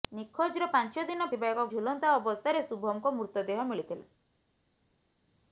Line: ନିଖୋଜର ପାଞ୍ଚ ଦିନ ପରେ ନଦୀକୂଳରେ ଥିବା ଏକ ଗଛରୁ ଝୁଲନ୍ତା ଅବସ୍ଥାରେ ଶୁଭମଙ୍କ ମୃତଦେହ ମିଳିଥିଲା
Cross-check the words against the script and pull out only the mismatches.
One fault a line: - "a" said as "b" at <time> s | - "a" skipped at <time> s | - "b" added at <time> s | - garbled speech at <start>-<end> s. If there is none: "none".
- "ପରେ ନଦୀକୂଳରେ" skipped at 1.3 s
- "ଗଛରୁ" skipped at 1.6 s